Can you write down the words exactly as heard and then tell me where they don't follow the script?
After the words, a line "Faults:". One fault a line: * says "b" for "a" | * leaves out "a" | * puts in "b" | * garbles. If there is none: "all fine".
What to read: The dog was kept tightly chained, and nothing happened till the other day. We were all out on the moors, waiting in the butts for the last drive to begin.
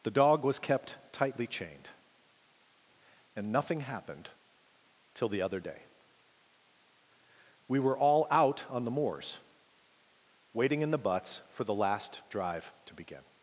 The dog was kept tightly chained, and nothing happened till the other day. We were all out on the moors, waiting in the butts for the last drive to begin.
Faults:
all fine